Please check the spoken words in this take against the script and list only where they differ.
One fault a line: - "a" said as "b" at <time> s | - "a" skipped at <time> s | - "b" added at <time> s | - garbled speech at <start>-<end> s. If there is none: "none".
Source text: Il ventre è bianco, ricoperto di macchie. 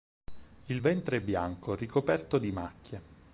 none